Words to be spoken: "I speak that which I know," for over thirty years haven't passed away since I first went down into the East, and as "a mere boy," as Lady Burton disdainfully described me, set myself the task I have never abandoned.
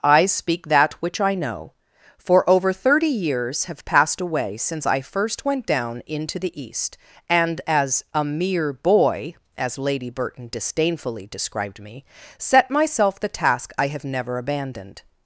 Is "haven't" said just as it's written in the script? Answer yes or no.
no